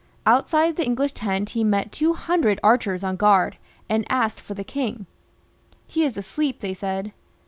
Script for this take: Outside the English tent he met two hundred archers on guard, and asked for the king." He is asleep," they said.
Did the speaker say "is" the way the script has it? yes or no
yes